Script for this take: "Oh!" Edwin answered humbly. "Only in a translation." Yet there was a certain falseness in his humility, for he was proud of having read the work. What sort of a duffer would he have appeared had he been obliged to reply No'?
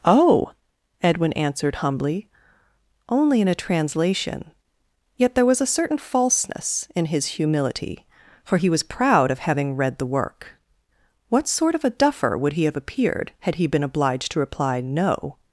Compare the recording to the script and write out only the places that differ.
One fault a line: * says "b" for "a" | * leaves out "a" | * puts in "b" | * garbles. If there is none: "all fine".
all fine